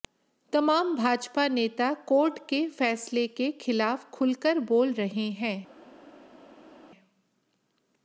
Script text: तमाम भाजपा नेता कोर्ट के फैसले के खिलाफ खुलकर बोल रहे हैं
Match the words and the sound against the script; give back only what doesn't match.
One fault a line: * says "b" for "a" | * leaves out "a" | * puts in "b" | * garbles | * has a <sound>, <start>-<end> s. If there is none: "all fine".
all fine